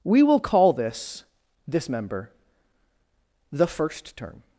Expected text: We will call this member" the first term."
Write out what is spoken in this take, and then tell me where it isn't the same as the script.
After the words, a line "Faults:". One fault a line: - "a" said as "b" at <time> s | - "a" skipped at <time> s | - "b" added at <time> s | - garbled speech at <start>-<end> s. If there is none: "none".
We will call this this member" the first term."
Faults:
- "this" added at 1.7 s